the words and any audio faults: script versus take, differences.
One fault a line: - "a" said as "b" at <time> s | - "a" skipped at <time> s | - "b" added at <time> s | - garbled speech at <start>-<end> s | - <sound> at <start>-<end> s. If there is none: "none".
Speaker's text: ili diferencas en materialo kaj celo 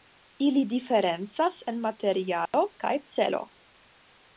- dropout at 2.5-2.5 s